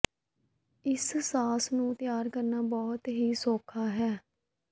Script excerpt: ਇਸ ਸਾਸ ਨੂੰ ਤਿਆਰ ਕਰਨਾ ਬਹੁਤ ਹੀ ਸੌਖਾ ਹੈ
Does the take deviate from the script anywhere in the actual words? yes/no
no